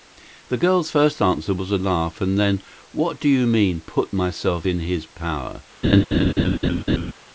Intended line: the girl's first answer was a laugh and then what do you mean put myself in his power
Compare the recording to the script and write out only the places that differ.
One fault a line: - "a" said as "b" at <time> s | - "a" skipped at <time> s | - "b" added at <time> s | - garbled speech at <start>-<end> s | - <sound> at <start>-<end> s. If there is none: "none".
- laugh at 5.8-7.1 s